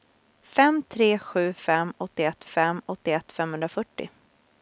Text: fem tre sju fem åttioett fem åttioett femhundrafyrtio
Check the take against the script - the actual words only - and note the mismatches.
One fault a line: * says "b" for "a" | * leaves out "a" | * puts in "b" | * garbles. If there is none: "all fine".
all fine